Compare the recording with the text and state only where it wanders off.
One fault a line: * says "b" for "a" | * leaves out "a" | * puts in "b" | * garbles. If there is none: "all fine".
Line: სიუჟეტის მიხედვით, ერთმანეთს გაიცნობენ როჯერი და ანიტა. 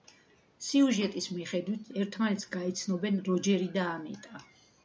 all fine